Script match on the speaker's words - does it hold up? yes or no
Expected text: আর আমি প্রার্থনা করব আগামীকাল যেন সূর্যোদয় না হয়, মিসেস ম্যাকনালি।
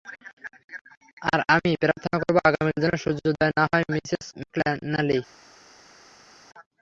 yes